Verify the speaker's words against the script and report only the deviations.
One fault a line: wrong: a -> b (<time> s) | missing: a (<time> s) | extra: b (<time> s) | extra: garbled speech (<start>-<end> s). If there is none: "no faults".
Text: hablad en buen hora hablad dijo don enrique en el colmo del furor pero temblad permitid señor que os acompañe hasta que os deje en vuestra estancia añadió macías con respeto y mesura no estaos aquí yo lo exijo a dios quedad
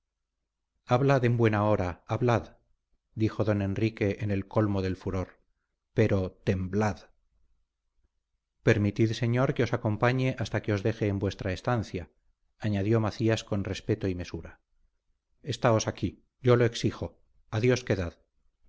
missing: no (14.6 s)